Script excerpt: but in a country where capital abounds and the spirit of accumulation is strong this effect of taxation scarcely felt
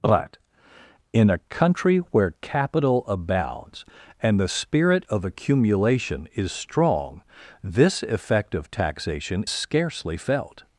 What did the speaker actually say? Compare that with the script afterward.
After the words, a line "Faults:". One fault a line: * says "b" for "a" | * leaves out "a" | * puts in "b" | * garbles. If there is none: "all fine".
but in a country where capital abounds and the spirit of accumulation is strong this effect of taxation scarcely felt
Faults:
all fine